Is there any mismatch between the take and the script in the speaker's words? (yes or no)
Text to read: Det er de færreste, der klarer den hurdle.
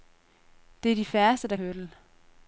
yes